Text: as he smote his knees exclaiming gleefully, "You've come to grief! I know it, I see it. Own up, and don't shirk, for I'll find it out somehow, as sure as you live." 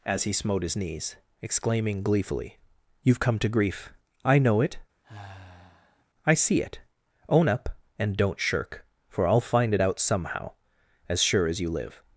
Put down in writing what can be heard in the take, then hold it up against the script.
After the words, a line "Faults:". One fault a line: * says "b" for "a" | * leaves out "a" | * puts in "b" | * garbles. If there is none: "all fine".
as he smote his knees exclaiming gleefully, "You've come to grief! I know it, I see it. Own up, and don't shirk, for I'll find it out somehow, as sure as you live."
Faults:
all fine